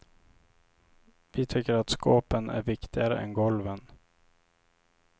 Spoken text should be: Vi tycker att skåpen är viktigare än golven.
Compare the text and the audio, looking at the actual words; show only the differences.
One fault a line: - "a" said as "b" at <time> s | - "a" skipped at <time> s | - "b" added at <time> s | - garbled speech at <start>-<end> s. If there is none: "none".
none